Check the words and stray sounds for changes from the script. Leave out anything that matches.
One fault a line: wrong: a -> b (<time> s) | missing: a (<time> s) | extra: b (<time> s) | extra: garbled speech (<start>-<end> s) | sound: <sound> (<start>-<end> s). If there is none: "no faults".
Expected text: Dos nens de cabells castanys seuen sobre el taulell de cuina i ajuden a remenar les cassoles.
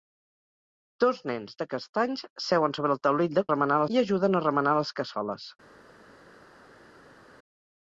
missing: cabells (1.7 s)
wrong: cuina -> remenar (3.5 s)